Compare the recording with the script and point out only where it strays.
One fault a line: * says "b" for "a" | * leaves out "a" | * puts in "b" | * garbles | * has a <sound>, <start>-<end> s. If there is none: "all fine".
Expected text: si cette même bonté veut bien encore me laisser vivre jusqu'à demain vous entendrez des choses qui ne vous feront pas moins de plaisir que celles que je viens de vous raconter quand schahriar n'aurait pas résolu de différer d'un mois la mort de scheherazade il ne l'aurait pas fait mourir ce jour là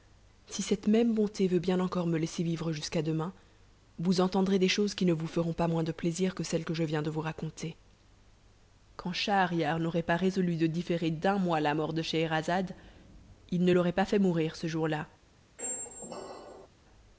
* has a squeak, 15.6-16.7 s